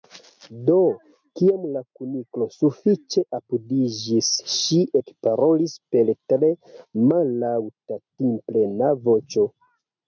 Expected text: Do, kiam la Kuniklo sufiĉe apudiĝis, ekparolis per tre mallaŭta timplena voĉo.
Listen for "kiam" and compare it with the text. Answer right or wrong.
right